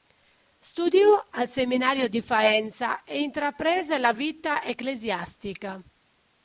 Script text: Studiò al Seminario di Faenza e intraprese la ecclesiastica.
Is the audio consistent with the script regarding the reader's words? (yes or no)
no